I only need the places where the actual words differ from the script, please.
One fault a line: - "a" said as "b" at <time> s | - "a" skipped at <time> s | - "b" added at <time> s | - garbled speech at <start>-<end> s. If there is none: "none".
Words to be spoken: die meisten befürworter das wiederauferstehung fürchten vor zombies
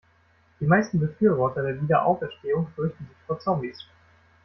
- "das" said as "der" at 1.6 s
- "sich" added at 3.1 s